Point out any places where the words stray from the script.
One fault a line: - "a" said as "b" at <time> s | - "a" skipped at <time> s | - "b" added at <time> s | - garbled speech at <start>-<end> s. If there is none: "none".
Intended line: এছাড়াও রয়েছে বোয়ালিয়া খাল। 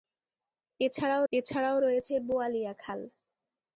- "এছাড়াও" added at 1.3 s